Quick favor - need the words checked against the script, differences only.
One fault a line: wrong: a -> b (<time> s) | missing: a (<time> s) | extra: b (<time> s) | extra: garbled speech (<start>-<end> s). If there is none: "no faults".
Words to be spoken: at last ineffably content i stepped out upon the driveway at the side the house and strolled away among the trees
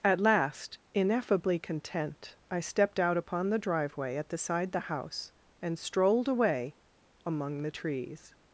no faults